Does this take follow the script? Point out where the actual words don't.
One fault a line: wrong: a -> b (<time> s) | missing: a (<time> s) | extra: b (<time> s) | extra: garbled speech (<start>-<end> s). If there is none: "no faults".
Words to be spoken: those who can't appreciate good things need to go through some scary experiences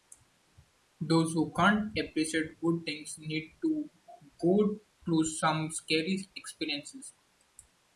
no faults